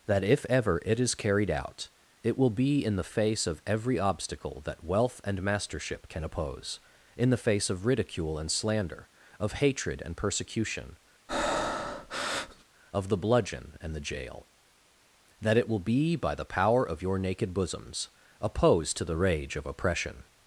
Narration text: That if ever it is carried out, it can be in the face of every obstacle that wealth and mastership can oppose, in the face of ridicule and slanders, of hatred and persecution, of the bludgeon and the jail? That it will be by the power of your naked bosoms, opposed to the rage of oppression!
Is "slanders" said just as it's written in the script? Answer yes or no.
no